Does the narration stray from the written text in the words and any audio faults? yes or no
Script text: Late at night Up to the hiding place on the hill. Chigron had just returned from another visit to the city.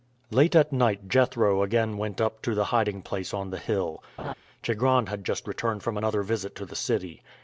yes